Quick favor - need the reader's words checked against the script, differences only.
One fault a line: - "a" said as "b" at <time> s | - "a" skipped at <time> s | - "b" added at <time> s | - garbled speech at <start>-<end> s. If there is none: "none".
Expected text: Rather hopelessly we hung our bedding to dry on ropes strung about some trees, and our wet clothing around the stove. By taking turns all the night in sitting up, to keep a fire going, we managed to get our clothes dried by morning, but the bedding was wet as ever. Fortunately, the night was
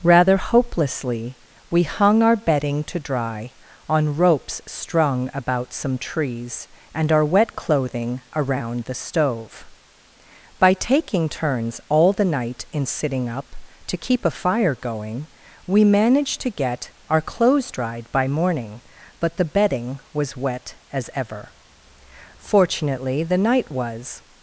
none